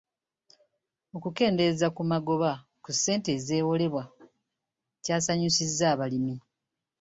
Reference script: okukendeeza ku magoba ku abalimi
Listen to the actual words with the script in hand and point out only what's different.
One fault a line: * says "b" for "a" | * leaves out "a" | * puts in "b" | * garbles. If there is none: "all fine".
* puts in "ssente ezeewolebwa kyasanyusizza"